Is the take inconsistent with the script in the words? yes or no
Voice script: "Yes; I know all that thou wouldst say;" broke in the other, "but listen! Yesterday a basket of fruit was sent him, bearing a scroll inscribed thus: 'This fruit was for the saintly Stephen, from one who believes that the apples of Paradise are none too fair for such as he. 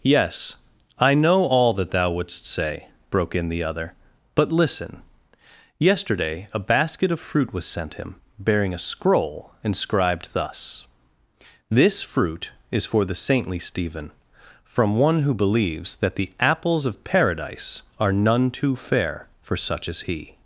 yes